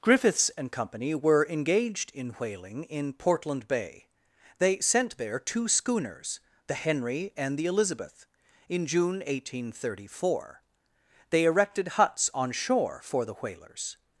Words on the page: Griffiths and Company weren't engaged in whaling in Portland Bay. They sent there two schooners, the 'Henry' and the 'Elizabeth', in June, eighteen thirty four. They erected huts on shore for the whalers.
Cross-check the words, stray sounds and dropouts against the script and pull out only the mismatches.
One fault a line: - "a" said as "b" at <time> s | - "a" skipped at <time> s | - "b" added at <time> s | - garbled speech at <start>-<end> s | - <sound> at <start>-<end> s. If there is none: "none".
- "weren't" said as "were" at 1.1 s